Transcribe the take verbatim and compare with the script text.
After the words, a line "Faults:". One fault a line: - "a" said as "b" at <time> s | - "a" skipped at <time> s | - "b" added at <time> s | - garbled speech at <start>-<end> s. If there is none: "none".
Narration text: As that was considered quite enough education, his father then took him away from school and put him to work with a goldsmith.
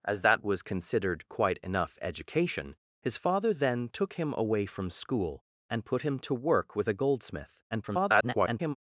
As that was considered quite enough education, his father then took him away from school and put him to work with a goldsmith. [garbled]
Faults:
- garbled speech at 7.7-8.8 s